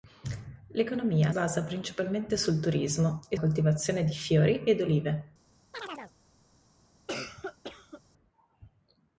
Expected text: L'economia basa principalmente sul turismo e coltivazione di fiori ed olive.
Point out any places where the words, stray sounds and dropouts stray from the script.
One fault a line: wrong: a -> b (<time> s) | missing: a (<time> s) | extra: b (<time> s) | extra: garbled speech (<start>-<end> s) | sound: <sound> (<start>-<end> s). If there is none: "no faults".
sound: chirp (5.7-6.1 s)
sound: cough (7.1-8.0 s)